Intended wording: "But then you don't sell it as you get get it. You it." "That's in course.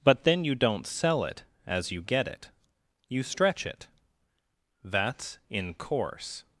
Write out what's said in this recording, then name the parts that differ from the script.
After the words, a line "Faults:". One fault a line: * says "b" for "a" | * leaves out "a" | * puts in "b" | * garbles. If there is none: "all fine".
"But then you don't sell it as you get it. You stretch it." "That's in course.
Faults:
* leaves out "get"
* puts in "stretch"